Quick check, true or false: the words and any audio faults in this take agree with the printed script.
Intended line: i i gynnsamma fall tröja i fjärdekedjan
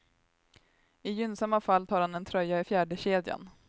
false